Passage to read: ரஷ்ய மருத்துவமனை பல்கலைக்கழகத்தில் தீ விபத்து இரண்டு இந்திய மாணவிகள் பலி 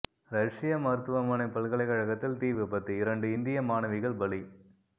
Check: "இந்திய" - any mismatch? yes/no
no